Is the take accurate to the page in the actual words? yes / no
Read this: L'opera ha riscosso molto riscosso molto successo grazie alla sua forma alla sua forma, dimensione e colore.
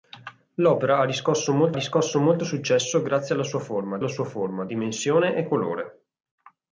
yes